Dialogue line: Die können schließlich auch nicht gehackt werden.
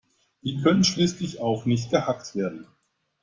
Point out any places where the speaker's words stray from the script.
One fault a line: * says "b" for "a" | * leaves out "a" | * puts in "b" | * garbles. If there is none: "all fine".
all fine